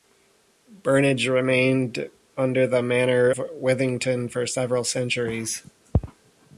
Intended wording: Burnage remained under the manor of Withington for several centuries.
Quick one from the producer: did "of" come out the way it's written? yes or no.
no